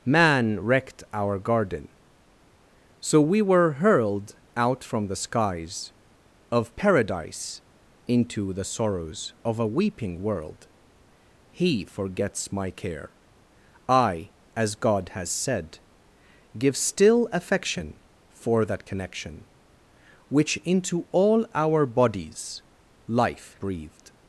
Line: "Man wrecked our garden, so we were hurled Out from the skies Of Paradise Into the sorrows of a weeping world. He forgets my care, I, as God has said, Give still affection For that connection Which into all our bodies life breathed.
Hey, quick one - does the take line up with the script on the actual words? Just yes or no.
yes